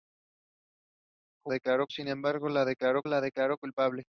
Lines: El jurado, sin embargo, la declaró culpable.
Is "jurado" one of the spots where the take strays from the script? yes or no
yes